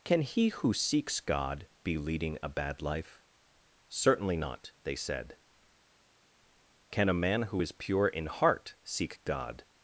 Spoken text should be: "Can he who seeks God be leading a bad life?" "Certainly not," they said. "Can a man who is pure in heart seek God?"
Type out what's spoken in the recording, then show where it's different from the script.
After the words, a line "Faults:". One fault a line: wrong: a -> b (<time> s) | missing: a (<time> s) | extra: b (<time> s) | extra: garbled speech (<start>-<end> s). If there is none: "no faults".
"Can he who seeks God be leading a bad life?" "Certainly not," they said. "Can a man who is pure in heart seek God?"
Faults:
no faults